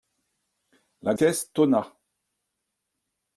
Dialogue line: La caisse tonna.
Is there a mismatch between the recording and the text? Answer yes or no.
no